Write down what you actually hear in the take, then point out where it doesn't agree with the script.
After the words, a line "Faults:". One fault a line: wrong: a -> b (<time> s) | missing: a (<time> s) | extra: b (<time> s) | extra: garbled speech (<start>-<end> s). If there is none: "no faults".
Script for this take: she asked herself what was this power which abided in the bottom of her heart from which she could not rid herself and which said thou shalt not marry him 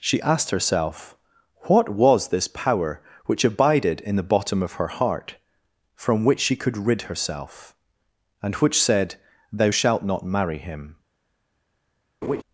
she asked herself what was this power which abided in the bottom of her heart from which she could rid herself and which said thou shalt not marry him
Faults:
missing: not (6.8 s)